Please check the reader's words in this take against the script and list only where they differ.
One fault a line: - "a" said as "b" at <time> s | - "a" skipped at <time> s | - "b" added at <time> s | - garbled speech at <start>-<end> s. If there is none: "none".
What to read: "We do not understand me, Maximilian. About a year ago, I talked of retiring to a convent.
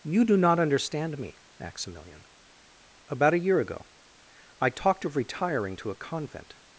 - "We" said as "You" at 0.0 s